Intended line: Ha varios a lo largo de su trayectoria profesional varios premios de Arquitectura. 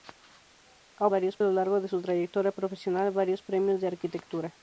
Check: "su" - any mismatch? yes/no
no